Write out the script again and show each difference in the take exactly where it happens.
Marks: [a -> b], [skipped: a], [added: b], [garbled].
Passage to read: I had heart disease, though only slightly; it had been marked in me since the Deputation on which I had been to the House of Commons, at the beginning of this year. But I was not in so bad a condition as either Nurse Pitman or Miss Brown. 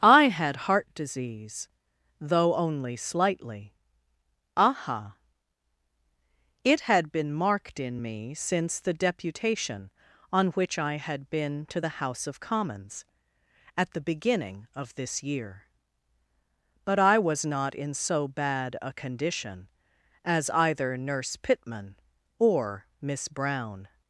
I had heart disease, though only slightly; [added: aha] it had been marked in me since the Deputation on which I had been to the House of Commons, at the beginning of this year. But I was not in so bad a condition as either Nurse Pitman or Miss Brown.